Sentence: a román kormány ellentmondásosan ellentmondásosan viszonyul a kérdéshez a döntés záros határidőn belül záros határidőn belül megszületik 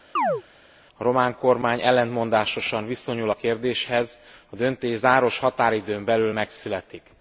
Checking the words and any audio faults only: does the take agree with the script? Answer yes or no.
no